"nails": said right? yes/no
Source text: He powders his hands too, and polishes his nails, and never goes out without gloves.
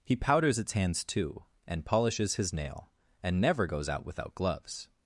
no